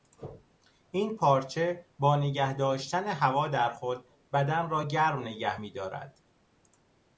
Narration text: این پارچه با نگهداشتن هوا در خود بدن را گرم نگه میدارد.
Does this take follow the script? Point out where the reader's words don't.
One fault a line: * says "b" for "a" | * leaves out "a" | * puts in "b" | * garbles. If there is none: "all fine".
all fine